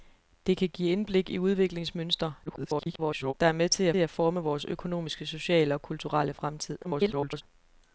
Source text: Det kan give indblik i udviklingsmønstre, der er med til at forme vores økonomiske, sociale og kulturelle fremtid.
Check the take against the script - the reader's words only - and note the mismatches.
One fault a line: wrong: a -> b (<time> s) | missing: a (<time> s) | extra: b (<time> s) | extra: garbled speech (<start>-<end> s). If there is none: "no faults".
extra: garbled speech (2.5-3.3 s)
extra: at (4.0 s)
extra: garbled speech (6.8-7.4 s)